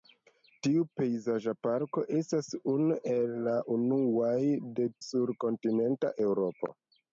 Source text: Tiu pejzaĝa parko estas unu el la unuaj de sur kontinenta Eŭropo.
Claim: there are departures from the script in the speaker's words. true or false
false